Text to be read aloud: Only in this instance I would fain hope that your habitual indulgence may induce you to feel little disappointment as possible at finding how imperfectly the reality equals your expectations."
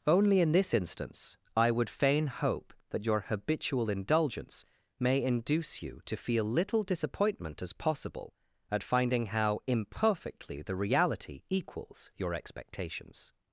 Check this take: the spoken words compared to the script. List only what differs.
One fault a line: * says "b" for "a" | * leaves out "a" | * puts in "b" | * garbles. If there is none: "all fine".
all fine